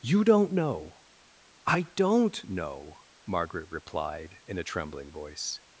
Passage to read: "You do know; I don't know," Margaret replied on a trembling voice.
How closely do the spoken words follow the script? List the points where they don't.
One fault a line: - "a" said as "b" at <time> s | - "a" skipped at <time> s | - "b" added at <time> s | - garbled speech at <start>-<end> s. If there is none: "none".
- "do" said as "don't" at 0.2 s
- "on" said as "in" at 4.5 s